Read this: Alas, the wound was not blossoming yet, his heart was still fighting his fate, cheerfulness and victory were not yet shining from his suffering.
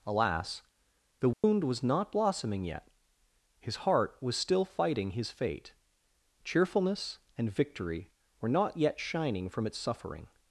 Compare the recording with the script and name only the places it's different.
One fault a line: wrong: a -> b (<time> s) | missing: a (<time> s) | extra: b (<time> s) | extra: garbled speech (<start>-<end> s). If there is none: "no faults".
wrong: his -> its (9.7 s)